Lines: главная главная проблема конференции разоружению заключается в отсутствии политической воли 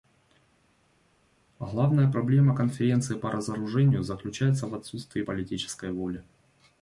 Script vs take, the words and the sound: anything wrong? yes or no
yes